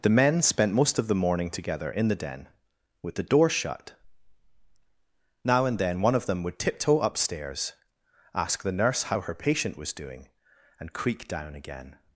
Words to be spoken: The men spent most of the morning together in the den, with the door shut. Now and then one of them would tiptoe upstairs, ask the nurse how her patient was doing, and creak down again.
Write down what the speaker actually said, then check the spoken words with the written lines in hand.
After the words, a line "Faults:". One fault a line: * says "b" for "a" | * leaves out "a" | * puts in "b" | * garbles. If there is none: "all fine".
The men spent most of the morning together in the den, with the door shut. Now and then one of them would tiptoe upstairs, ask the nurse how her patient was doing, and creak down again.
Faults:
all fine